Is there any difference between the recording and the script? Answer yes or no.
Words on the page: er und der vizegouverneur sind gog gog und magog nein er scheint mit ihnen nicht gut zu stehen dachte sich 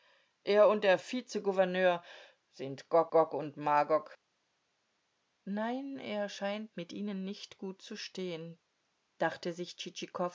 no